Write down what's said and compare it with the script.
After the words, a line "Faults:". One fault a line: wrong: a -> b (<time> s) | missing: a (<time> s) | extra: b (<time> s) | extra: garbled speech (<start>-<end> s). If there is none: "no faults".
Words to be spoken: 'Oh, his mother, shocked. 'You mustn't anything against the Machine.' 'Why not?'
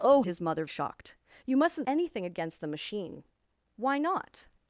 'Oh, his mother, shocked. 'You mustn't anything against the Machine.' 'Why not?'
Faults:
no faults